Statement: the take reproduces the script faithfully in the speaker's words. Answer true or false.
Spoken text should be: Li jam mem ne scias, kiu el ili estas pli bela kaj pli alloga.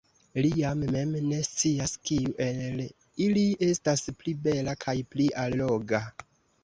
true